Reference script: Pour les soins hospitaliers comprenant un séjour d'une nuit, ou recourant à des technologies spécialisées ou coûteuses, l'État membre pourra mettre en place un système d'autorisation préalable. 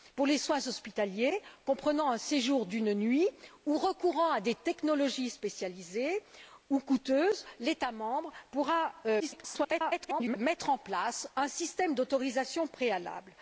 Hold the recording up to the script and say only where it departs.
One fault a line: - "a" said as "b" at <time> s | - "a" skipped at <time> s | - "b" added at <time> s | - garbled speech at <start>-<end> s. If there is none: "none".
- garbled speech at 9.2-10.4 s